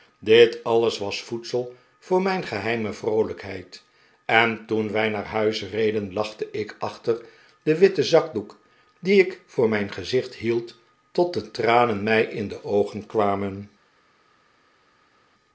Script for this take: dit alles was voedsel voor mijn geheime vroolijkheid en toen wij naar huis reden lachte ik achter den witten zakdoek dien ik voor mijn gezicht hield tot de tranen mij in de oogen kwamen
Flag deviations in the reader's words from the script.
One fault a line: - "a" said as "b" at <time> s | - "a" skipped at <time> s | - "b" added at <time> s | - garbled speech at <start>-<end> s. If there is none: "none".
none